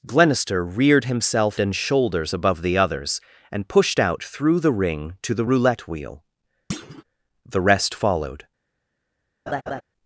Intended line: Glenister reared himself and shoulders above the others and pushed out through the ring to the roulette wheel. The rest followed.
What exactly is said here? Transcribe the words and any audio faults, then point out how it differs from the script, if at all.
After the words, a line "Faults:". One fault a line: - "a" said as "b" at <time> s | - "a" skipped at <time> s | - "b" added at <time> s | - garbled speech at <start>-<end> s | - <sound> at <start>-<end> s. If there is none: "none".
Glenister reared himself and shoulders above the others and pushed out through the ring to the roulette wheel. The rest followed.
Faults:
- thud at 6.7-7.0 s
- laugh at 9.5-9.8 s